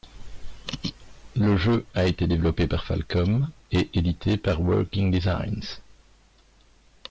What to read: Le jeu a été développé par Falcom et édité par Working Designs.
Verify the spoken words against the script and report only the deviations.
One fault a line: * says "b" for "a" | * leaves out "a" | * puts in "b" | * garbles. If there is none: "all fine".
all fine